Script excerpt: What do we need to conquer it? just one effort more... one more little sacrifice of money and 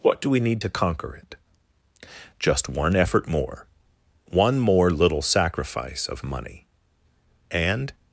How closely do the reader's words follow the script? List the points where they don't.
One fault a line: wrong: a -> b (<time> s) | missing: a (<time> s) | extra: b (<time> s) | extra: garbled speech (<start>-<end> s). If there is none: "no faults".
no faults